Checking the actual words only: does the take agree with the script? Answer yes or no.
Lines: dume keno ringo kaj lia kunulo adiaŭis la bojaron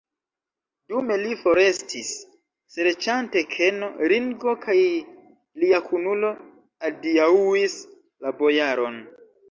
no